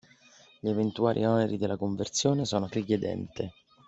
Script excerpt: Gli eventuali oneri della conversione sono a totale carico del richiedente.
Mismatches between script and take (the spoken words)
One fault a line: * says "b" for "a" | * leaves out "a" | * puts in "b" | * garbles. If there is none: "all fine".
* leaves out "totale carico del"